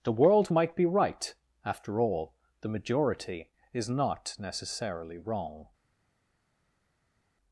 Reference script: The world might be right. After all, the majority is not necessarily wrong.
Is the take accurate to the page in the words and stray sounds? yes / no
yes